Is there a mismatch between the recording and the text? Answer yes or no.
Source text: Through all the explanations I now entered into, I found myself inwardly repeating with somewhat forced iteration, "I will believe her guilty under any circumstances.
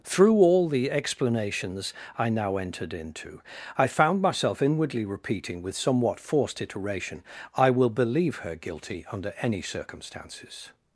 no